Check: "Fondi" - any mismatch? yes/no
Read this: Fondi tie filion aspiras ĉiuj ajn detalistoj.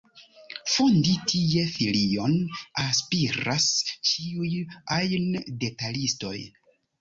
no